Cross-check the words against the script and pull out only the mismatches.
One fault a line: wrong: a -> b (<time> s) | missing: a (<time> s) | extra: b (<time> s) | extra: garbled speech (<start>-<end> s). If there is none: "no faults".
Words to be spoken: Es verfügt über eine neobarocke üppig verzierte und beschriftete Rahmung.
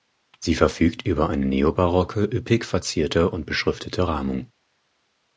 wrong: Es -> Sie (0.4 s)